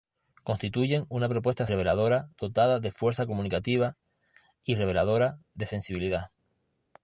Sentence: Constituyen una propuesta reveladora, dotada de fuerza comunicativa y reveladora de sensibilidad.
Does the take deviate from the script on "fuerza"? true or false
false